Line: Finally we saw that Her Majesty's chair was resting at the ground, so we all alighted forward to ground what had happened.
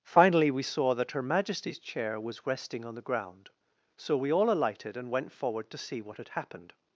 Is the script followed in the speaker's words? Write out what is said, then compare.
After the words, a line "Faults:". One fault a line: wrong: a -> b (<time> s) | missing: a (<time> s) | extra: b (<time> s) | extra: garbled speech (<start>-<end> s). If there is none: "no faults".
Finally we saw that Her Majesty's chair was resting on the ground, so we all alighted and went forward to see what had happened.
Faults:
wrong: at -> on (2.9 s)
extra: and went (5.0 s)
wrong: ground -> see (5.8 s)